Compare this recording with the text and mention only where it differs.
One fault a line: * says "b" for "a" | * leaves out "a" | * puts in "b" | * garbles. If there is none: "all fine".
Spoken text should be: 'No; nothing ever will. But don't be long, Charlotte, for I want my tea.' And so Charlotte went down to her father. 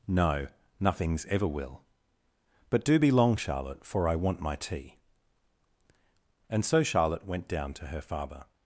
* says "nothings" for "nothing"
* says "do" for "don't"